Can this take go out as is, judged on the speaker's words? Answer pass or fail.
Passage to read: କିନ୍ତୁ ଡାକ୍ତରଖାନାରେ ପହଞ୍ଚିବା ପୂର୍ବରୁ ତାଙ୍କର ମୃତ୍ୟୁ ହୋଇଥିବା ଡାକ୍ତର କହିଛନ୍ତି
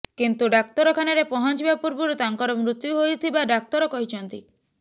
pass